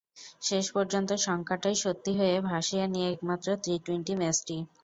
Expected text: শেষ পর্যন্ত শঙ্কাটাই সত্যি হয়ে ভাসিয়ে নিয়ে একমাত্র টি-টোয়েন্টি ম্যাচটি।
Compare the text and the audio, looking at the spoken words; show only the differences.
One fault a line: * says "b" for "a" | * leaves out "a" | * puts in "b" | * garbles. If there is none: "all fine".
all fine